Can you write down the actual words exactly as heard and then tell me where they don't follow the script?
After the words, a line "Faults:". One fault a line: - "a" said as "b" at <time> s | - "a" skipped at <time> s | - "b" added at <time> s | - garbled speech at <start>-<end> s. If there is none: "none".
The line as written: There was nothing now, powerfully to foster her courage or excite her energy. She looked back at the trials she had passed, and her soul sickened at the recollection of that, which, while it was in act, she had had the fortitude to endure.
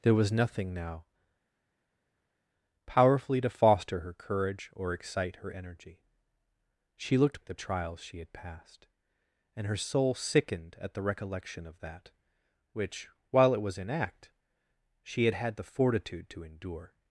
There was nothing now, powerfully to foster her courage or excite her energy. She looked at the trials she had passed, and her soul sickened at the recollection of that, which, while it was in act, she had had the fortitude to endure.
Faults:
- "back" skipped at 7.4 s